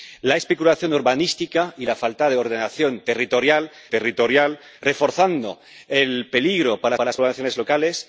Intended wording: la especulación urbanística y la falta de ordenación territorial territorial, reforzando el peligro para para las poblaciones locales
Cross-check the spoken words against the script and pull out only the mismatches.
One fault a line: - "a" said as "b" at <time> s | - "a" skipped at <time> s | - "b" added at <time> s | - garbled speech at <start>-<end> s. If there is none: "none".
none